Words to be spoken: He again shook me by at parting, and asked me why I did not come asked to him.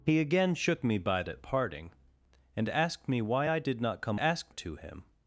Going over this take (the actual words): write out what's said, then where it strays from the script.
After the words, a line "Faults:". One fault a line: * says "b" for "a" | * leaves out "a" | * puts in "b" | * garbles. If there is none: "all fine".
He again shook me by at parting, and asked me why I did not come asked to him.
Faults:
all fine